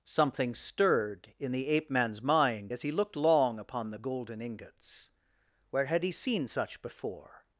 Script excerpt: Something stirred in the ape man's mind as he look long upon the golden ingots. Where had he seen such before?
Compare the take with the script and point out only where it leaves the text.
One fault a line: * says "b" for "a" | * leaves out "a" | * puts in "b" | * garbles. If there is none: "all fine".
* says "looked" for "look"